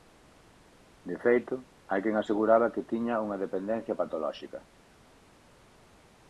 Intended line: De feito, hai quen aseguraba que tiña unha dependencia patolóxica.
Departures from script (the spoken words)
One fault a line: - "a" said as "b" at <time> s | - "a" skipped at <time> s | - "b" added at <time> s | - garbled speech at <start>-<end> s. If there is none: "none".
none